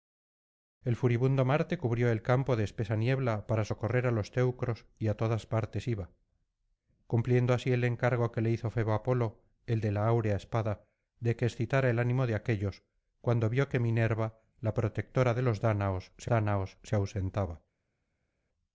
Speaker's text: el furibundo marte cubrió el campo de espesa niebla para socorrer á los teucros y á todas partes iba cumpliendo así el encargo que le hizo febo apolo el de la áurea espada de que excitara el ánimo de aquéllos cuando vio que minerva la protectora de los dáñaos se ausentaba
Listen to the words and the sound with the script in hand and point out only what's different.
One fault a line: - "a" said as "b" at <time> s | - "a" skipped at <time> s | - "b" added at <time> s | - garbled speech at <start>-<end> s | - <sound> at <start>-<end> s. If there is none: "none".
- "dáñaos se" added at 16.3 s